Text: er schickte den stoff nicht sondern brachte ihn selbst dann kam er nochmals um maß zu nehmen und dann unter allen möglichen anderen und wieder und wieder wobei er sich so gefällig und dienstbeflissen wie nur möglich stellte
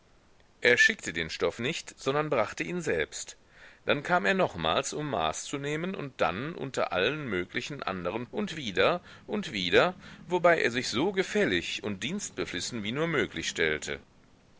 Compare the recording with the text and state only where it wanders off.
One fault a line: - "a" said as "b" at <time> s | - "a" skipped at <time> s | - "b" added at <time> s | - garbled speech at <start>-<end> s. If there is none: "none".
none